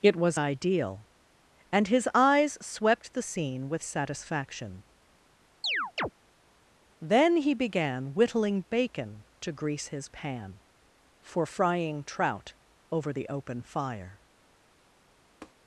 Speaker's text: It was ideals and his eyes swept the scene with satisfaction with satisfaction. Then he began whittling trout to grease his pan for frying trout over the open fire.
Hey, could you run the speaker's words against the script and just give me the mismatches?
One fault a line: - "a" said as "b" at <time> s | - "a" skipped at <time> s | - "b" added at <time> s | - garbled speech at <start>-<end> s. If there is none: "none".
- "ideals" said as "ideal" at 0.4 s
- "with satisfaction" skipped at 4.8 s
- "trout" said as "bacon" at 8.7 s